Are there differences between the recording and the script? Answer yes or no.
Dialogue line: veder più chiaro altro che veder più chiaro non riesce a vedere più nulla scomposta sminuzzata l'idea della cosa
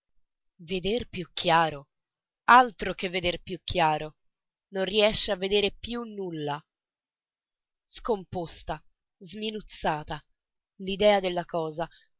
no